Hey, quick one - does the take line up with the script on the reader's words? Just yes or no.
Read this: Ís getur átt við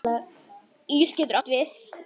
yes